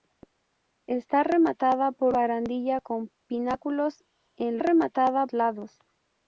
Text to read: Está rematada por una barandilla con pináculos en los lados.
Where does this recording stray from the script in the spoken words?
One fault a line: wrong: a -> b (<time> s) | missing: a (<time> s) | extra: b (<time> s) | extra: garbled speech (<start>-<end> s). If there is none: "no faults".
missing: una (2.1 s)
wrong: los -> rematada (4.6 s)